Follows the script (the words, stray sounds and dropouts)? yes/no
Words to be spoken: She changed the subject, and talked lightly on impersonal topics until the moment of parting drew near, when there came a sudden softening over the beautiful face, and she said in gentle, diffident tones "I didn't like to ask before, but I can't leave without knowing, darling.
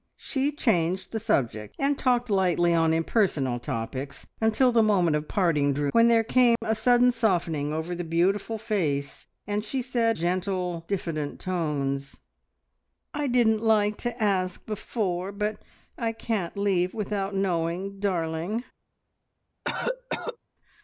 no